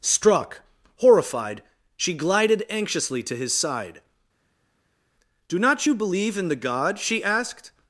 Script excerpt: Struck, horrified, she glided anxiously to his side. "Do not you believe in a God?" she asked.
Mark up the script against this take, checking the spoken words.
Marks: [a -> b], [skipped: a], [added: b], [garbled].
Struck, horrified, she glided anxiously to his side. "Do not you believe in [a -> the] God?" she asked.